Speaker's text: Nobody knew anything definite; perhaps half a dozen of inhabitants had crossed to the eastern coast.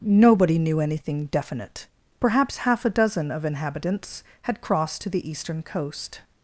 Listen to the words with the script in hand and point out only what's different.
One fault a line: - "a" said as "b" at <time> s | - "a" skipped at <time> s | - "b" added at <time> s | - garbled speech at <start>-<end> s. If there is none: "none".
none